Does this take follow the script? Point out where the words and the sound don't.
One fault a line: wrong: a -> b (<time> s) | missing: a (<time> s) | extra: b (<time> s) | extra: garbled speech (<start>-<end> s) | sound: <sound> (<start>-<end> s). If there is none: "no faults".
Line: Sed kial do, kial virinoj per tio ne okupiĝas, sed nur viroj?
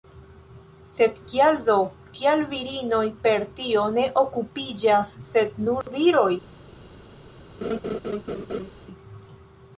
sound: dropout (5.8-5.9 s)
sound: laugh (7.6-8.7 s)